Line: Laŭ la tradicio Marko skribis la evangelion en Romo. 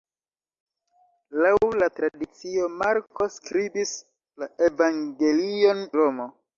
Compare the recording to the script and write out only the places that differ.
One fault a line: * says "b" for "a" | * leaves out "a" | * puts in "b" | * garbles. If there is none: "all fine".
* leaves out "en"